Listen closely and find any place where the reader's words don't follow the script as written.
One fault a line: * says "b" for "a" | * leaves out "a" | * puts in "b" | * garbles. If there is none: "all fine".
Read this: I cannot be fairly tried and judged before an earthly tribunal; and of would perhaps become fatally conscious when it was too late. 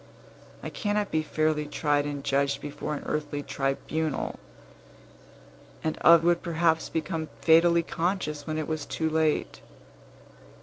all fine